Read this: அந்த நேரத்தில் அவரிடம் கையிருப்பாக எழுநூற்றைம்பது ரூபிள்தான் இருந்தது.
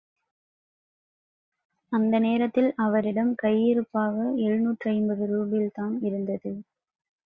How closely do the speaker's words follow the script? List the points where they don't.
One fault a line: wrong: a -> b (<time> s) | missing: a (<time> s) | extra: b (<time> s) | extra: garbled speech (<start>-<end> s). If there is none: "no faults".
no faults